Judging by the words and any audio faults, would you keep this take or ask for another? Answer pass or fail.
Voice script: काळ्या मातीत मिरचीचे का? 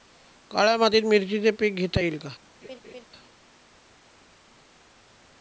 fail